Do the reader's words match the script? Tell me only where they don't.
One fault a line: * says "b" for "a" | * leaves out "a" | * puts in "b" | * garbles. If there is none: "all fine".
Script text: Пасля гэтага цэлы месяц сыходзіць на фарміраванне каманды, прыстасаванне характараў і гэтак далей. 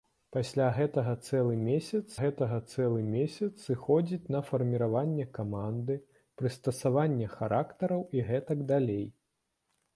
* puts in "гэтага цэлы месяц"